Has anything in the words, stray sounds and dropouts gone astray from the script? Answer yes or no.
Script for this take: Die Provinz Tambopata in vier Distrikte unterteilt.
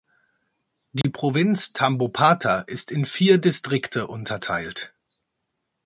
yes